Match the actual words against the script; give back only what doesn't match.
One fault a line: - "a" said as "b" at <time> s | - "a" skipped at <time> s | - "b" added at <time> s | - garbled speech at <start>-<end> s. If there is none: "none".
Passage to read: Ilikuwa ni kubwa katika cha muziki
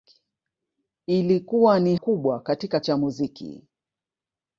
none